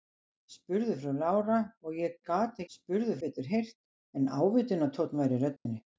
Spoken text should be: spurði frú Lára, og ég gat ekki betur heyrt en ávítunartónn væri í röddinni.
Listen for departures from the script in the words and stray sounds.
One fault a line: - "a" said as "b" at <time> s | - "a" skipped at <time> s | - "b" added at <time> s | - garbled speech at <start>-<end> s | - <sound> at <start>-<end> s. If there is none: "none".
- "ekki" said as "spurði" at 2.7 s
- dropout at 5.6-5.7 s